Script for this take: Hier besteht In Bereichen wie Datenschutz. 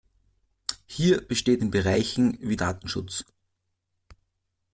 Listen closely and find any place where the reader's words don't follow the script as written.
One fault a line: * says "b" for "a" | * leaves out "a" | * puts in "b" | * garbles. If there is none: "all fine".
all fine